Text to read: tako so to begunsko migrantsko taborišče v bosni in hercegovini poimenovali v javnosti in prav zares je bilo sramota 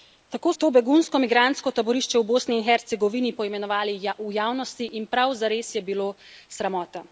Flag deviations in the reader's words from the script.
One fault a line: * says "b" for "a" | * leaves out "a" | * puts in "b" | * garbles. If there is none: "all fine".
* leaves out "so"